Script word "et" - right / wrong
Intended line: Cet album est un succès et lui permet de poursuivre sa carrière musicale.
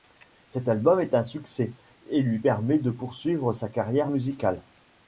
right